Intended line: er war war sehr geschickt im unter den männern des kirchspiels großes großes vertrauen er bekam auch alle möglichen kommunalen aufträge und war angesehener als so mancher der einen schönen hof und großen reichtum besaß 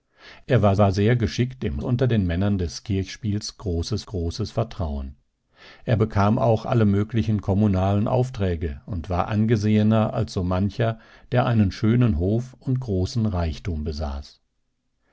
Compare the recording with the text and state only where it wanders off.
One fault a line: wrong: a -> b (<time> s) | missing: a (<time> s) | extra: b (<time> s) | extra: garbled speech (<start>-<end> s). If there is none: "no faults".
no faults